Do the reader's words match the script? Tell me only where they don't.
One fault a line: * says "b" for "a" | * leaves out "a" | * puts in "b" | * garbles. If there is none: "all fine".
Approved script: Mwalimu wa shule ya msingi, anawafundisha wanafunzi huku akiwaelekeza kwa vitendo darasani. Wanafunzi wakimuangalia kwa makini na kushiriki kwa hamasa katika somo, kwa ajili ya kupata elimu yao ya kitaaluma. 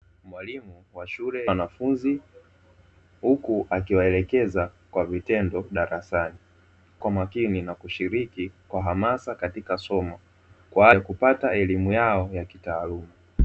* leaves out "ya msingi anawafundisha"
* leaves out "Wanafunzi wakimuangalia"
* leaves out "ajili"